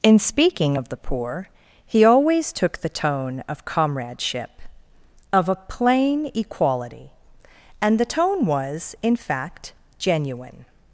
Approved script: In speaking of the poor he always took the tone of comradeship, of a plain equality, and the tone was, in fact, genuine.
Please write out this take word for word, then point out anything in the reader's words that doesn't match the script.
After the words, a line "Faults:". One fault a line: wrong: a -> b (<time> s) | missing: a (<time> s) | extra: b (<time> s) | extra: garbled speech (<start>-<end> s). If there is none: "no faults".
In speaking of the poor he always took the tone of comradeship, of a plain equality, and the tone was, in fact, genuine.
Faults:
no faults